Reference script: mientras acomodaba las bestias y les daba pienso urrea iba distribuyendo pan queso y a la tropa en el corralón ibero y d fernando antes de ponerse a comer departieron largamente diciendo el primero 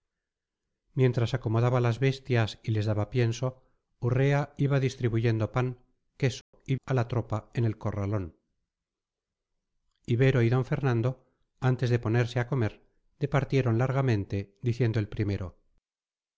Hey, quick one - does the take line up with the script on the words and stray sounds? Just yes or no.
no